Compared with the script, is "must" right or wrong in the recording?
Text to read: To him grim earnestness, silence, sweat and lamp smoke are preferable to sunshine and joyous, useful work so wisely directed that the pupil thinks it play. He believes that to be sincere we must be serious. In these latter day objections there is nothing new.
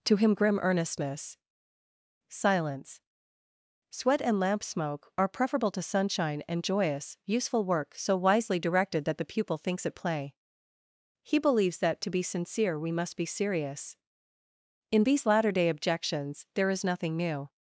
right